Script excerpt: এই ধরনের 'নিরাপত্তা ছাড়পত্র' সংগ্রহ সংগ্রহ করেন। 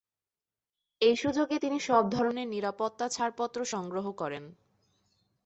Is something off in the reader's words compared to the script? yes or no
yes